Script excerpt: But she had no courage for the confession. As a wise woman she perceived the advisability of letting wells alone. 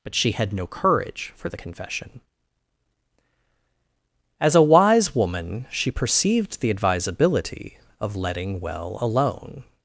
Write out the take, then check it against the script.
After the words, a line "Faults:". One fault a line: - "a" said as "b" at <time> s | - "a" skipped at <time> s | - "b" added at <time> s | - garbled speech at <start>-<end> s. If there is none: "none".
But she had no courage for the confession. As a wise woman she perceived the advisability of letting well alone.
Faults:
- "wells" said as "well" at 8.6 s